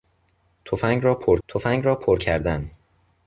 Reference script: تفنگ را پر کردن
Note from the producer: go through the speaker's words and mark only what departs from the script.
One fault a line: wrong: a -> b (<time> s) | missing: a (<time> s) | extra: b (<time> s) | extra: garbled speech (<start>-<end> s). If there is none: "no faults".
extra: تفنگ را پر (1.5 s)